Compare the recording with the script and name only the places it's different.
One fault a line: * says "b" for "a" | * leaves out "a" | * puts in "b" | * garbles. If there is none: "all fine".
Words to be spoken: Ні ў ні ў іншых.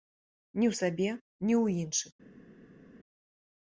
* puts in "сабе"